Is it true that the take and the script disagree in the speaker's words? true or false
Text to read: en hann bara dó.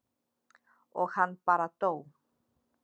true